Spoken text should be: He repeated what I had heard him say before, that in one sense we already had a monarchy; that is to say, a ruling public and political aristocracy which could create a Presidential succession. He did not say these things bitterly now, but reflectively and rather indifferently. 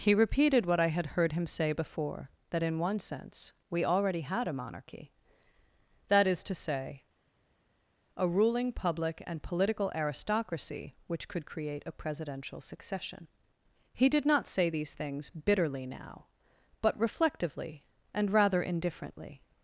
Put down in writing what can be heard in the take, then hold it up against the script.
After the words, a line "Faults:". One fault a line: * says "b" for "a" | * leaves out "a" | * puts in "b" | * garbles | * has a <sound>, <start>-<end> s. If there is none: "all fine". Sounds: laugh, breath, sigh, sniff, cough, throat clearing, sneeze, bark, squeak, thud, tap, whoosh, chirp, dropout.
He repeated what I had heard him say before, that in one sense we already had a monarchy; that is to say, a ruling public and political aristocracy which could create a Presidential succession. He did not say these things bitterly now, but reflectively and rather indifferently.
Faults:
all fine